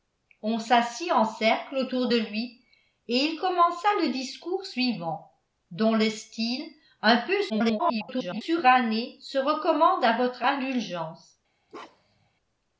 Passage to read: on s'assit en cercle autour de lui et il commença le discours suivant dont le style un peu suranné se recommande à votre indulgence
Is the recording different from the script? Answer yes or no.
yes